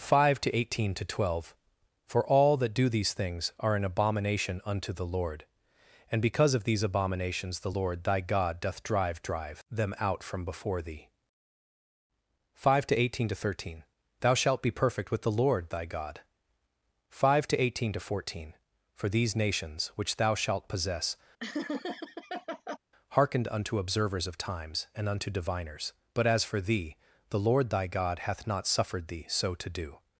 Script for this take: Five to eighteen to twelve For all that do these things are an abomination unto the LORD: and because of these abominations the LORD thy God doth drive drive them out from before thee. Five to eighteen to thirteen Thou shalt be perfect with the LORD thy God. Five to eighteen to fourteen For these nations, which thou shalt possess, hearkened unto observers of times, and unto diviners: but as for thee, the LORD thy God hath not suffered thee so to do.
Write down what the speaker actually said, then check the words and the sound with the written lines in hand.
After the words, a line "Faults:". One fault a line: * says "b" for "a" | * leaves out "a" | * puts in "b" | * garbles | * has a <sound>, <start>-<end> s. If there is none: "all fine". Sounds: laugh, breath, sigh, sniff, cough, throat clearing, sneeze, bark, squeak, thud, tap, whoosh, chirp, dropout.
Five to eighteen to twelve For all that do these things are an abomination unto the LORD: and because of these abominations the LORD thy God doth drive drive them out from before thee. Five to eighteen to thirteen Thou shalt be perfect with the LORD thy God. Five to eighteen to fourteen For these nations, which thou shalt possess, hearkened unto observers of times, and unto diviners: but as for thee, the LORD thy God hath not suffered thee so to do.
Faults:
* has a laugh, 21.4-22.8 s